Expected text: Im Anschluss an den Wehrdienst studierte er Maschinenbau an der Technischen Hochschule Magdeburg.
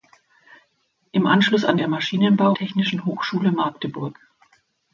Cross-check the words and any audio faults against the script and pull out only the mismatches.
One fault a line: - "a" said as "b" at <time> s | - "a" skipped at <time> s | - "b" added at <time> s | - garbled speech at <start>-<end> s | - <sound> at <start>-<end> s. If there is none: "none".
- "den Wehrdienst studierte" skipped at 1.8 s
- "an der" skipped at 2.5 s